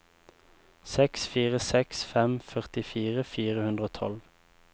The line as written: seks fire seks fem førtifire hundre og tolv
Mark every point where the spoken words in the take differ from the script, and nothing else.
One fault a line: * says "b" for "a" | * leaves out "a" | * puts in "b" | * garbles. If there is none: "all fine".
* puts in "fire"